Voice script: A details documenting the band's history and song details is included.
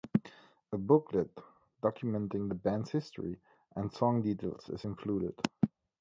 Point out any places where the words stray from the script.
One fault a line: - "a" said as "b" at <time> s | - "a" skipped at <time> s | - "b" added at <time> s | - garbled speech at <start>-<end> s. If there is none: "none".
- "details" said as "booklet" at 0.8 s